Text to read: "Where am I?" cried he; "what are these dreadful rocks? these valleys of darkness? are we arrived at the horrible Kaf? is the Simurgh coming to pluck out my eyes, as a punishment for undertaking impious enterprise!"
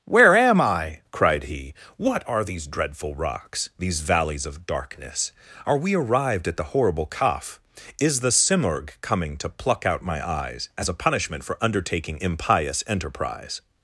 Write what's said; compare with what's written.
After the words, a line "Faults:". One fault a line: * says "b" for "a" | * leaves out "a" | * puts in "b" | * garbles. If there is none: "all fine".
"Where am I?" cried he; "what are these dreadful rocks? these valleys of darkness? are we arrived at the horrible Kaf? is the Simurgh coming to pluck out my eyes, as a punishment for undertaking impious enterprise!"
Faults:
all fine